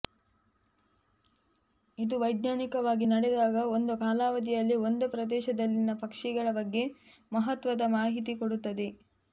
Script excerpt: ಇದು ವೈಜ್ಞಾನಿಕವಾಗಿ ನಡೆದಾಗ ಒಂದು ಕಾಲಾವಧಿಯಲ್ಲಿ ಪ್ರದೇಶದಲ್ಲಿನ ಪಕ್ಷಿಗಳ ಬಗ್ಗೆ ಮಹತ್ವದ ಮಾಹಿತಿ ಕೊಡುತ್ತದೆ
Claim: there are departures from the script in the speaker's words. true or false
true